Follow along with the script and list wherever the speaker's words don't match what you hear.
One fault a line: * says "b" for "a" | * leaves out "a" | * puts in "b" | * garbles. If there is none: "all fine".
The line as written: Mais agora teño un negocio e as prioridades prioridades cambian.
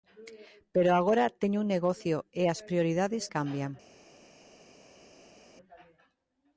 * says "Pero" for "Mais"
* leaves out "prioridades"